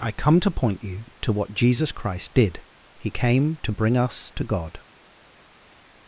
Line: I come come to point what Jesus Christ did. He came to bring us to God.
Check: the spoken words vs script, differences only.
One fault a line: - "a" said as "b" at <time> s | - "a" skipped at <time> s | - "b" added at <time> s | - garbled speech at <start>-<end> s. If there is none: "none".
- "come" skipped at 0.4 s
- "you to" added at 0.8 s